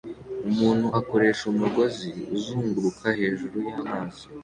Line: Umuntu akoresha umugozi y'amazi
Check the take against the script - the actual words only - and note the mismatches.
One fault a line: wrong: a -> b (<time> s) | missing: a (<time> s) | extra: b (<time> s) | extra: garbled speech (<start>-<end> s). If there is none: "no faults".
extra: uzunguruka hejuru (2.3 s)